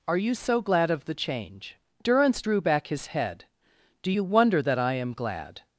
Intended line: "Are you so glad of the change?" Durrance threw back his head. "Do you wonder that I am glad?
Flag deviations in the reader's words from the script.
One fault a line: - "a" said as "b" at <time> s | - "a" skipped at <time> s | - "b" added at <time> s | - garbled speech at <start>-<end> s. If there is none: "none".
- "threw" said as "drew" at 2.4 s